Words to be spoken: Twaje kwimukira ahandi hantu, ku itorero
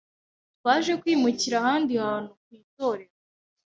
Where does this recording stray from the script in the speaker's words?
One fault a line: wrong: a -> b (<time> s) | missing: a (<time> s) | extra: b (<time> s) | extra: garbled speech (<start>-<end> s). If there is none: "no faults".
no faults